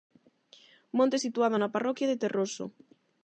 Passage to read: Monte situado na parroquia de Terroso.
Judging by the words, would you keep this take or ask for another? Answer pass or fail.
pass